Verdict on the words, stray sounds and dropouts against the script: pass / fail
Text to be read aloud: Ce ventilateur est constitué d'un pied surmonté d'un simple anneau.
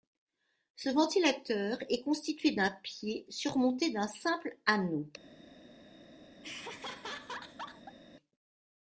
fail